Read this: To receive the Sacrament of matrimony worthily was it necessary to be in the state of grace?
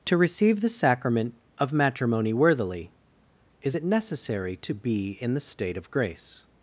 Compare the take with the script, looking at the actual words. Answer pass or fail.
fail